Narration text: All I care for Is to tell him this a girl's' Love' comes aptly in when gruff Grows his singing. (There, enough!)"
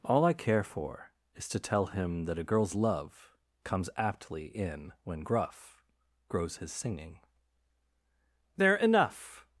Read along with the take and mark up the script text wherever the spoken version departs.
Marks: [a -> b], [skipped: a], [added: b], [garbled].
All I care for Is to tell him [this -> that] a girl's' Love' comes aptly in when gruff Grows his singing. (There, enough!)"